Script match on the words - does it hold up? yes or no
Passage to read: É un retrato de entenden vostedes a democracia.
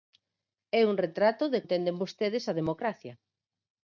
yes